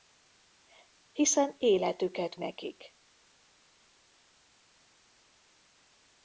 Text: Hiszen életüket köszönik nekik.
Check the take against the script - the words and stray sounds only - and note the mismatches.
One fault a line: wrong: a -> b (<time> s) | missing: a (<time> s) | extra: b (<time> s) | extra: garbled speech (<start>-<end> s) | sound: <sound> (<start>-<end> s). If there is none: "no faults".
missing: köszönik (2.4 s)